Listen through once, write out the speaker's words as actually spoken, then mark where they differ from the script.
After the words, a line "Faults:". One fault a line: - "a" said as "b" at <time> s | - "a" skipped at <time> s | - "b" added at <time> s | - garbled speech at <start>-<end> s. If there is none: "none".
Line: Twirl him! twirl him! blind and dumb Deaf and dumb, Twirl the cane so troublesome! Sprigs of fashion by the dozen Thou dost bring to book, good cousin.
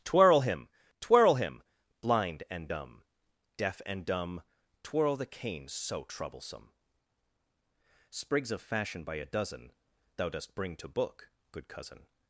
Twirl him! twirl him! blind and dumb Deaf and dumb, Twirl the cane so troublesome! Sprigs of fashion by a dozen Thou dost bring to book, good cousin.
Faults:
- "the" said as "a" at 9.2 s